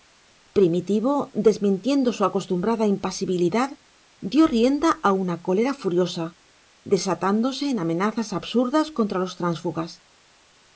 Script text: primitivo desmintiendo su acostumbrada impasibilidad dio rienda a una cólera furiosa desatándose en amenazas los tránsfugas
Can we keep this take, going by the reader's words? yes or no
no